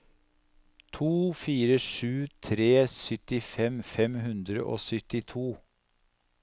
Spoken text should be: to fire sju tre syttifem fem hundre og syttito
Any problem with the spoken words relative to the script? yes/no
no